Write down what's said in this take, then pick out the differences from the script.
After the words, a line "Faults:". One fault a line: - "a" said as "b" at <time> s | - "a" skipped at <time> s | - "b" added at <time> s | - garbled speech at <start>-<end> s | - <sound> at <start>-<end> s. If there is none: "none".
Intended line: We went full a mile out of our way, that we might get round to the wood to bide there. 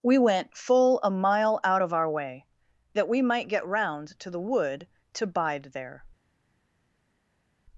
We went full a mile out of our way, that we might get round to the wood to bide there.
Faults:
none